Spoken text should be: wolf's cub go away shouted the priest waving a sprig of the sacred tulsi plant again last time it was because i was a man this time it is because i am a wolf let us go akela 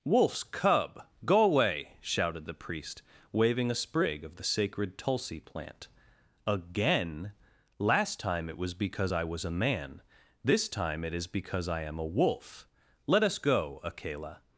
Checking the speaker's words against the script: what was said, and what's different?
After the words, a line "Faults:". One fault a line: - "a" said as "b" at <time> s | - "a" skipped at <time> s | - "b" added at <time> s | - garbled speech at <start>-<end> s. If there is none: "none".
wolf's cub go away shouted the priest waving a sprig of the sacred tulsi plant again last time it was because i was a man this time it is because i am a wolf let us go akela
Faults:
none